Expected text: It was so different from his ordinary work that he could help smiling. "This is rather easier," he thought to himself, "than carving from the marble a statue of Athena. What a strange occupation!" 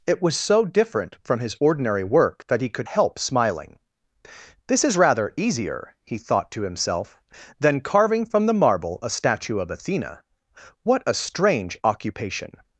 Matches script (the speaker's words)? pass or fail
pass